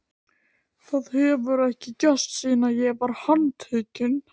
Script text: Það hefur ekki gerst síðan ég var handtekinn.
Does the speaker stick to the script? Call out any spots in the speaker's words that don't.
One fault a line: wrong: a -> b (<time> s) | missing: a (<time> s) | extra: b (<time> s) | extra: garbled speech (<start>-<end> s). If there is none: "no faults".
no faults